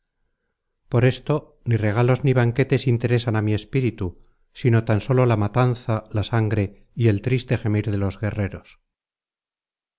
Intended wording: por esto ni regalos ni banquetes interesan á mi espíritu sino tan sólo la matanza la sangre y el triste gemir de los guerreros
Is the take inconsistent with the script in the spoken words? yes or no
no